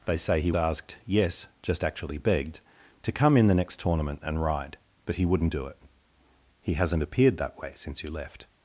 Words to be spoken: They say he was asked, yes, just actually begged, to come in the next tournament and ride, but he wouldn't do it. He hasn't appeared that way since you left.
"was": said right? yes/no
no